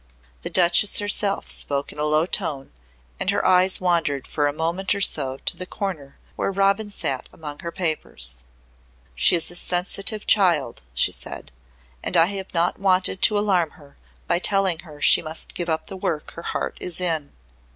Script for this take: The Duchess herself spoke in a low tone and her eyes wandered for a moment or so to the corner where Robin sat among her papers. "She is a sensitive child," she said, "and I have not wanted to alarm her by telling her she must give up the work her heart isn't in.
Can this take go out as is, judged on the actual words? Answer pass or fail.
fail